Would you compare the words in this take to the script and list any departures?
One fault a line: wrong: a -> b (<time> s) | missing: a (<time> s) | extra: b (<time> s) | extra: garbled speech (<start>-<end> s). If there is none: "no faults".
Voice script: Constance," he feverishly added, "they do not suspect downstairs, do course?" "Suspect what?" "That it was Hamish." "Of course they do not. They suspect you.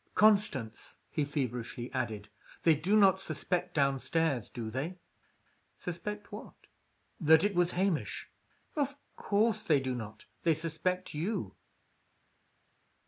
wrong: course -> they (4.7 s)